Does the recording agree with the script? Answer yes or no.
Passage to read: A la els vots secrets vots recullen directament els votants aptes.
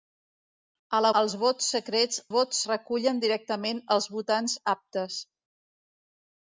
yes